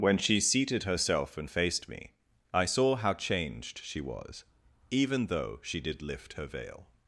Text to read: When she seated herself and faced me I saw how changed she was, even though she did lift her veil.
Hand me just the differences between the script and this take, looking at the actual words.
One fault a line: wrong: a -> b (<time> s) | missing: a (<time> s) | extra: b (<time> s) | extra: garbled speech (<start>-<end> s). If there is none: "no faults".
no faults